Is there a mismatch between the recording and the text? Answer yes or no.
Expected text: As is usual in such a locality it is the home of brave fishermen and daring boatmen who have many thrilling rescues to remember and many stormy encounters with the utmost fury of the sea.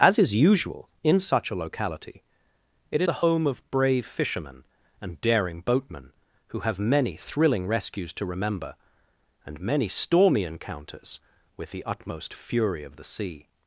yes